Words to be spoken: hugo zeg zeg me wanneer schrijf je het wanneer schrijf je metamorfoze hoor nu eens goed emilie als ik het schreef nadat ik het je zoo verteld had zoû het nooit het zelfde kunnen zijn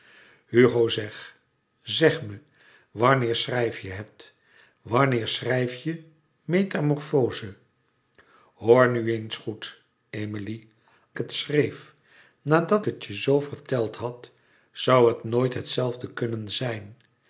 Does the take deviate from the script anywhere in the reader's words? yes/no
yes